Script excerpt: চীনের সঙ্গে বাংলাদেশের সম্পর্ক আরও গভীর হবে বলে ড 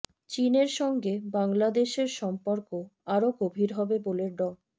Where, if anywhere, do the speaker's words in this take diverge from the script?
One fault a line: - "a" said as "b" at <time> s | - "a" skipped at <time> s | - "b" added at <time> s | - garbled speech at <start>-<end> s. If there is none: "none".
none